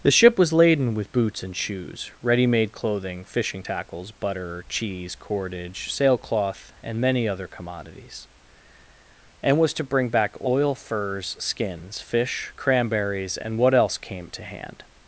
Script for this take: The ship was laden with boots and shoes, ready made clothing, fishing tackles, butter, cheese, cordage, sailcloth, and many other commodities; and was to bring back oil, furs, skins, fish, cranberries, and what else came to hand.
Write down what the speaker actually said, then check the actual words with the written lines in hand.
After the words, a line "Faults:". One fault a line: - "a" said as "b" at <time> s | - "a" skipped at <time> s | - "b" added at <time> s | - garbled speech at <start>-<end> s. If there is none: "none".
The ship was laden with boots and shoes, ready made clothing, fishing tackles, butter, cheese, cordage, sailcloth, and many other commodities; and was to bring back oil, furs, skins, fish, cranberries, and what else came to hand.
Faults:
none